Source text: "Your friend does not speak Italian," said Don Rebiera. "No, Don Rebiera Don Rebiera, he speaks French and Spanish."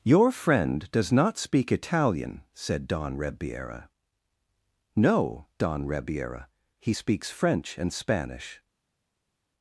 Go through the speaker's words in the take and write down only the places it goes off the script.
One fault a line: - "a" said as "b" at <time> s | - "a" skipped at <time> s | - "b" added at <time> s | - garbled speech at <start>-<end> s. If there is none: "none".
- "Don Rebiera" skipped at 6.5 s